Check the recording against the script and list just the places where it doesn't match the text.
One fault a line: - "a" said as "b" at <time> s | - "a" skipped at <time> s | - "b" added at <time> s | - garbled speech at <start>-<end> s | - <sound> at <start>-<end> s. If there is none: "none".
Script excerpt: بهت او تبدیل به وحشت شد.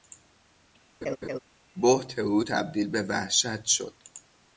- laugh at 1.0-1.4 s